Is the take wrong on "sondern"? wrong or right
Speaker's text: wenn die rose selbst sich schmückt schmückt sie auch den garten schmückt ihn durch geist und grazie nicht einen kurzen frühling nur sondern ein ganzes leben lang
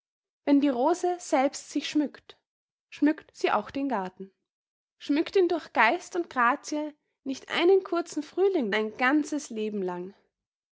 wrong